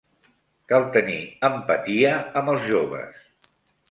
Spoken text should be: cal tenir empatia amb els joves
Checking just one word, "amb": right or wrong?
right